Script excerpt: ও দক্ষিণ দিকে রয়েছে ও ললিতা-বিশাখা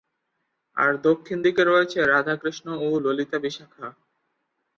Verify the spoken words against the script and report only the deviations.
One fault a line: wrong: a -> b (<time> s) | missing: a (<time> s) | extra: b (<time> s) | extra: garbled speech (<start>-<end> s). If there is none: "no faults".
wrong: ও -> আর (0.8 s)
extra: রাধাকৃষ্ণ (2.0 s)